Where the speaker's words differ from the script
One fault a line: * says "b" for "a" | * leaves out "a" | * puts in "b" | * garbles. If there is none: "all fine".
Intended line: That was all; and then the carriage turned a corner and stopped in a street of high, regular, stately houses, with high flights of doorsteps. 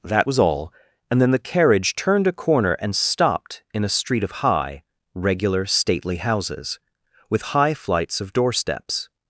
all fine